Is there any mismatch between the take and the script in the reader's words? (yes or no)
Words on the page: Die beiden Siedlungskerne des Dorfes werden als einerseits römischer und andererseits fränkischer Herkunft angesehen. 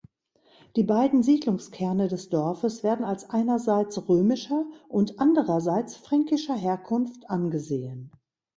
no